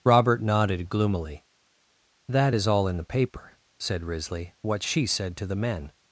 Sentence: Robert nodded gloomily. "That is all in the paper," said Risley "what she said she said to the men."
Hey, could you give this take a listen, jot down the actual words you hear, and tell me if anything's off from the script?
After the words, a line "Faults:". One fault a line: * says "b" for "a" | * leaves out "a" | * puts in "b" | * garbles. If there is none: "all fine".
Robert nodded gloomily. "That is all in the paper," said Risley "what she said to the men."
Faults:
* leaves out "she said"